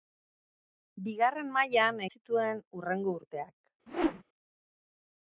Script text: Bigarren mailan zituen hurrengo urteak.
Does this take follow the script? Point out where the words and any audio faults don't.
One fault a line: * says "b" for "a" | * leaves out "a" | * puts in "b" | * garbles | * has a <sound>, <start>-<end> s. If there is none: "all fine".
* has a whoosh, 3.9-4.2 s